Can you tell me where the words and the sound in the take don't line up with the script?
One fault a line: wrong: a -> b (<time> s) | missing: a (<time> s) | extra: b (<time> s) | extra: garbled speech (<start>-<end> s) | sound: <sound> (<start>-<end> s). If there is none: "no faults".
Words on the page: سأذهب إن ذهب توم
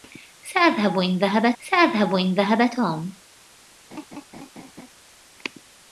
extra: سأذهب إن ذهب (1.6 s)
sound: laugh (3.9-4.9 s)